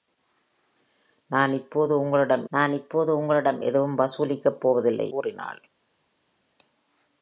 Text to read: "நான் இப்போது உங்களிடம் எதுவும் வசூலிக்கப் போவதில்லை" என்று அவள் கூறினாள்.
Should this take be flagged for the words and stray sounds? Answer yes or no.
yes